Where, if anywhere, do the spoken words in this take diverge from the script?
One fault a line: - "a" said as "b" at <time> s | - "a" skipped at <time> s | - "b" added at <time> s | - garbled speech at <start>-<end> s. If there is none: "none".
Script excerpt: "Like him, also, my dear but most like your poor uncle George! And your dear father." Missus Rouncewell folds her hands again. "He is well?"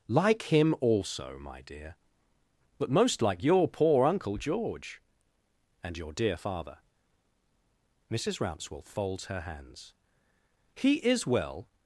- "again" skipped at 9.9 s